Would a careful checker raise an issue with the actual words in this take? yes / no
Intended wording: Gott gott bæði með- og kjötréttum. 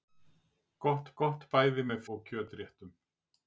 no